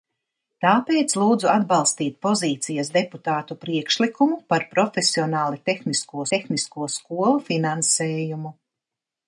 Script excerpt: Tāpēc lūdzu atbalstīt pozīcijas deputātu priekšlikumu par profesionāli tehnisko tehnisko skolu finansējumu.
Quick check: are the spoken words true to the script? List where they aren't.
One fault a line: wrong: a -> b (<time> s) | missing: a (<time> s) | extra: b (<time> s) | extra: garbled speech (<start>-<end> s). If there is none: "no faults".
no faults